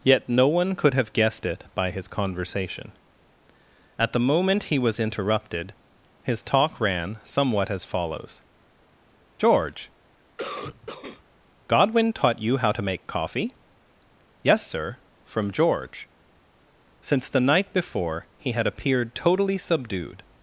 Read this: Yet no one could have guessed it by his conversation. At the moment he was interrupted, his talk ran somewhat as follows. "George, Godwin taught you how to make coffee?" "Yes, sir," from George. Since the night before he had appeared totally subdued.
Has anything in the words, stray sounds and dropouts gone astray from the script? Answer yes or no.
yes